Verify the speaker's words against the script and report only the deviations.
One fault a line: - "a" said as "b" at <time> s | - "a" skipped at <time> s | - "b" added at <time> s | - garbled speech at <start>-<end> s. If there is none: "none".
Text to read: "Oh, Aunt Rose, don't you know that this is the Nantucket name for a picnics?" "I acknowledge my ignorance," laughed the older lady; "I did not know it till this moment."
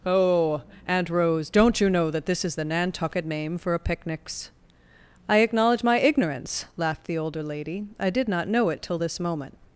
none